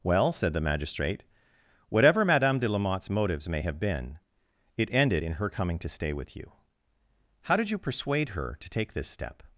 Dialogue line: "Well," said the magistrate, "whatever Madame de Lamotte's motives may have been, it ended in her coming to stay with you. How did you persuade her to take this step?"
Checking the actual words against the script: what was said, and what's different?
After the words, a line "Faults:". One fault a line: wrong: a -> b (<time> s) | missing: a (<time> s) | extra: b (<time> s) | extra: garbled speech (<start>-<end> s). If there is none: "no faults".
"Well," said the magistrate, "whatever Madame de Lamotte's motives may have been, it ended in her coming to stay with you. How did you persuade her to take this step?"
Faults:
no faults